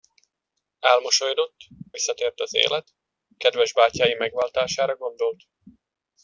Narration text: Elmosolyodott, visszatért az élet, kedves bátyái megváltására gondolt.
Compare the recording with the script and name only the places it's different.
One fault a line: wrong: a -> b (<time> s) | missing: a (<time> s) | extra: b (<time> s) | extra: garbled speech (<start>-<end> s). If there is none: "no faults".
no faults